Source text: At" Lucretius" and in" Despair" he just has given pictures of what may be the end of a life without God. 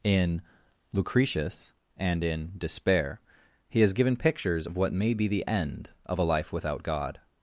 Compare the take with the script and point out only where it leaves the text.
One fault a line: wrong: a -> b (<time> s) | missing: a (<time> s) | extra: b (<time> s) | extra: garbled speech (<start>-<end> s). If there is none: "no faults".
wrong: At -> In (0.0 s)
missing: just (3.8 s)